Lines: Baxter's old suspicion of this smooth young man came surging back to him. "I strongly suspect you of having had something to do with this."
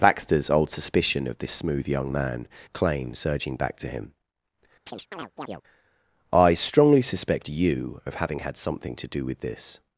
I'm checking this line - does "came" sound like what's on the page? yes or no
no